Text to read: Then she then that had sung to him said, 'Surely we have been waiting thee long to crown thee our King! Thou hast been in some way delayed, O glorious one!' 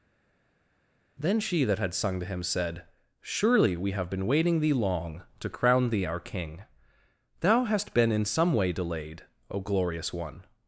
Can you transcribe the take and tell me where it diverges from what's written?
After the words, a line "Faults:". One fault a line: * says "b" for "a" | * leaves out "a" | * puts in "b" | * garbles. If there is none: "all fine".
Then she that had sung to him said, 'Surely we have been waiting thee long to crown thee our King! Thou hast been in some way delayed, O glorious one!'
Faults:
* leaves out "then"